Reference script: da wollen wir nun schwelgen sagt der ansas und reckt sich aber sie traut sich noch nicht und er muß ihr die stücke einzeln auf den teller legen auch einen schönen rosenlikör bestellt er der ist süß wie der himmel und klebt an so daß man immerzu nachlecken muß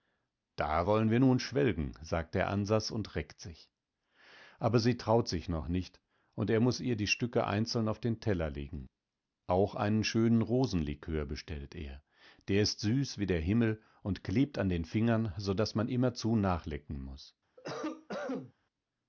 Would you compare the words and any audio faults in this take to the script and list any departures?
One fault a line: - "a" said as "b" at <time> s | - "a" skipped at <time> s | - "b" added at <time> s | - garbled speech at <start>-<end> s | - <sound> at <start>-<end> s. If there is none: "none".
- "den fingern" added at 14.7 s
- cough at 17.6-18.5 s